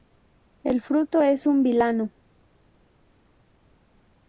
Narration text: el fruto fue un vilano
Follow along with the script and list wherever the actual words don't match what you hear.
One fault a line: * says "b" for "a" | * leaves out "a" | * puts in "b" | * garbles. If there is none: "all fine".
* says "es" for "fue"